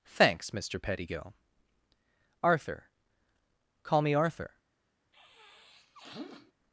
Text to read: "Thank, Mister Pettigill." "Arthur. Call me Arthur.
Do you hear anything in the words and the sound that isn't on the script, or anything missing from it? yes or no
yes